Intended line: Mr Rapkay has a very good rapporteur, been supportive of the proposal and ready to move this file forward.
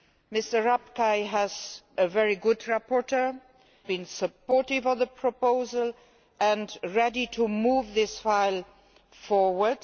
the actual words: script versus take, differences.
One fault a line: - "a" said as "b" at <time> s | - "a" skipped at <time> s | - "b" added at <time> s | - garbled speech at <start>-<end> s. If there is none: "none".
none